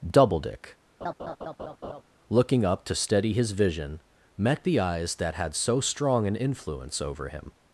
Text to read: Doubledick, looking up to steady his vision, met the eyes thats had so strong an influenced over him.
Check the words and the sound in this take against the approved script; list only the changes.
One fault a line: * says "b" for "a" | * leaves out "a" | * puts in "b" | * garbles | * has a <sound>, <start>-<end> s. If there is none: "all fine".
* has a laugh, 1.0-2.0 s
* says "that" for "thats"
* says "influence" for "influenced"